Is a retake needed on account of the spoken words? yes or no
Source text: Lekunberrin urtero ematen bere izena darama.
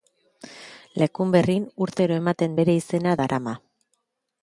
no